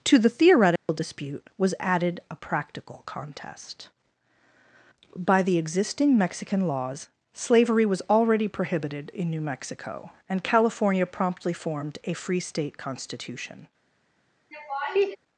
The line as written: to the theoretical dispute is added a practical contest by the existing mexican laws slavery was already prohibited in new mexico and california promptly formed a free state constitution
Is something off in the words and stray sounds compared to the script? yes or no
yes